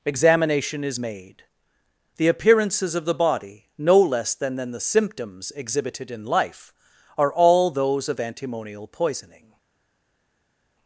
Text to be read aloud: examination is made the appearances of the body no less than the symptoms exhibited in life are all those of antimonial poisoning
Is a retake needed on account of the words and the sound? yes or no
yes